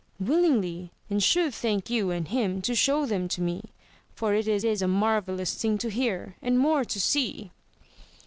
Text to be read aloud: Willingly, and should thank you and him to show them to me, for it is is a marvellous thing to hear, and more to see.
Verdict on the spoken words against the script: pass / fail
pass